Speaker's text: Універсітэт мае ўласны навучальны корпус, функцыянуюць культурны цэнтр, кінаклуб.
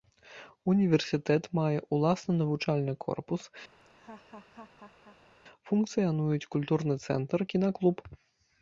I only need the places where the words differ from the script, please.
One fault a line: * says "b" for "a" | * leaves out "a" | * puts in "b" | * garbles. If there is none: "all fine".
all fine